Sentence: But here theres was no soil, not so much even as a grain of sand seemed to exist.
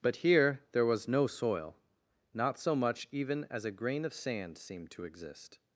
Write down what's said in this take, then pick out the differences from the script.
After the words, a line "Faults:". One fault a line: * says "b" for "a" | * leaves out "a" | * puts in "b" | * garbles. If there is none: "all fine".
But here there was no soil, not so much even as a grain of sand seemed to exist.
Faults:
* says "there" for "theres"